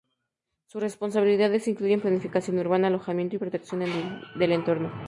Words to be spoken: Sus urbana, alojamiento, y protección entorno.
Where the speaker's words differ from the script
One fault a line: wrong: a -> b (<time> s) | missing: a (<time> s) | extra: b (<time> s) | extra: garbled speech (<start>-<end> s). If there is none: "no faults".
extra: responsabilidades incluyen planificación (0.8 s)
extra: del (4.4 s)